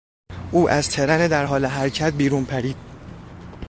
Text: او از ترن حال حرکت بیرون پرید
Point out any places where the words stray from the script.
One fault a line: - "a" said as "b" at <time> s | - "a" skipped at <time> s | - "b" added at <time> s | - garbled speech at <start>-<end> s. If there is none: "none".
- "در" added at 1.3 s